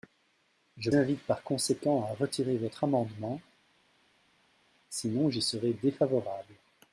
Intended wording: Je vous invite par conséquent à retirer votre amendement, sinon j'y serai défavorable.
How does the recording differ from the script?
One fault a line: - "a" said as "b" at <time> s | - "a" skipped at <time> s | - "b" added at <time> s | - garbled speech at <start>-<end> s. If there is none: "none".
- "vous" skipped at 0.9 s